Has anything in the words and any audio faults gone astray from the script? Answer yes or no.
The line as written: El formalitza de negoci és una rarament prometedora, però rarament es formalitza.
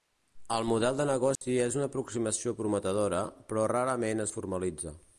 yes